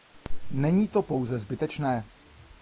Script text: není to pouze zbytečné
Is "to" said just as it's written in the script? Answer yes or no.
yes